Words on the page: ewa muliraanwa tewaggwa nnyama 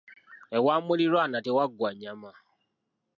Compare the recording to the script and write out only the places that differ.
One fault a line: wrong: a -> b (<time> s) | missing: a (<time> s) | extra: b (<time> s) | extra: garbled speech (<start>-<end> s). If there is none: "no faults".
no faults